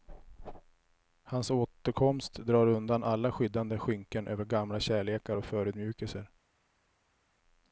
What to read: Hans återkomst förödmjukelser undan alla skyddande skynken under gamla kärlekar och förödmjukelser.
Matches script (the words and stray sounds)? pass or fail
fail